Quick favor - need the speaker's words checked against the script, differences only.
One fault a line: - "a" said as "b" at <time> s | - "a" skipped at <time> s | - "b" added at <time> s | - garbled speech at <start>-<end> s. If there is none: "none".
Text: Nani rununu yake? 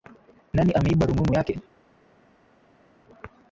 - "ameiba" added at 0.7 s